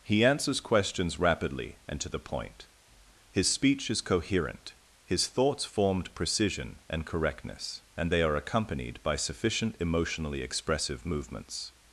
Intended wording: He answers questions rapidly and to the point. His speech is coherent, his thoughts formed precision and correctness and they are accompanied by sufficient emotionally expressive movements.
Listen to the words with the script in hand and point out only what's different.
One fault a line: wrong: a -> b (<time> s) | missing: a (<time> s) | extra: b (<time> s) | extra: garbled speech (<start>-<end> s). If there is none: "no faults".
no faults